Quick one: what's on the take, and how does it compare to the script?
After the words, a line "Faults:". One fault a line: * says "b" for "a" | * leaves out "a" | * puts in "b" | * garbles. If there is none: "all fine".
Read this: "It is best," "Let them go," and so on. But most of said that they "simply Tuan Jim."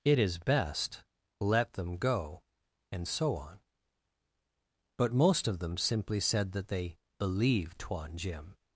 "It is best," "Let them go," and so on. But most of them simply said that they "believed Tuan Jim."
Faults:
* puts in "them simply"
* says "believed" for "simply"